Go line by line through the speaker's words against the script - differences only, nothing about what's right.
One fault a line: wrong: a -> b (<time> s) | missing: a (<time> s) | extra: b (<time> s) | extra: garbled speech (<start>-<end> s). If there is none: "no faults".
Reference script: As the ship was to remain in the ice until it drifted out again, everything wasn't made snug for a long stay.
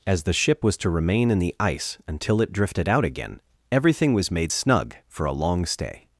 wrong: wasn't -> was (4.1 s)